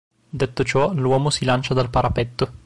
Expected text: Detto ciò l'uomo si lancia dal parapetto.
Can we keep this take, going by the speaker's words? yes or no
yes